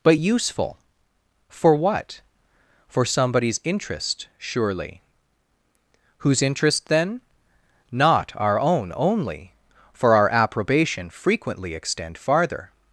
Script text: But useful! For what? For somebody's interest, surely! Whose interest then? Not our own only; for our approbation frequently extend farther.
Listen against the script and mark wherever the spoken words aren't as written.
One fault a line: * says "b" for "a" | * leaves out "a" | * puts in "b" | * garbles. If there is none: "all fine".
all fine